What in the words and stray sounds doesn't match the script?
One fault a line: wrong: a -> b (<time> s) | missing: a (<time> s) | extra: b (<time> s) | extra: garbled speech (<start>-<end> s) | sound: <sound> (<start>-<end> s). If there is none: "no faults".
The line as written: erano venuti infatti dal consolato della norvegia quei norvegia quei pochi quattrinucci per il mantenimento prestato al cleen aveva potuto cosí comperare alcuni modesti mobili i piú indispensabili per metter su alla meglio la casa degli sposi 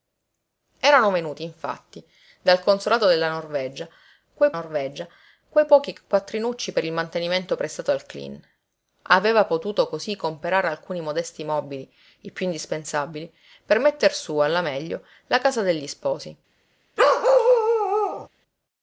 sound: bark (17.0-18.3 s)